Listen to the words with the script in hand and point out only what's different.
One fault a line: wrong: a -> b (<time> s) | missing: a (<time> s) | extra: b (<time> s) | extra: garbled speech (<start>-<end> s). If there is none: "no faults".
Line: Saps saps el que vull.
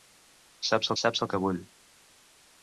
no faults